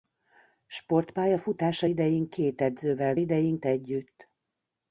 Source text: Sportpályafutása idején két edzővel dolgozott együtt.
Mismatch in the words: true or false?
true